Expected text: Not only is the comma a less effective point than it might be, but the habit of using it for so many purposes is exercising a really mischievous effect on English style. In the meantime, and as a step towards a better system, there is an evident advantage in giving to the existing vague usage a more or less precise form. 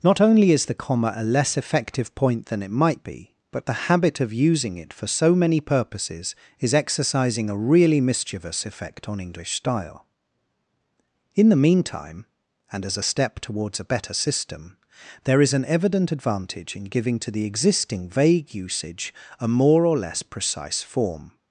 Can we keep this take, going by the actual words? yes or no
yes